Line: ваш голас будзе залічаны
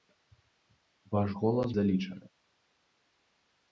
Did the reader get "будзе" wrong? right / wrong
wrong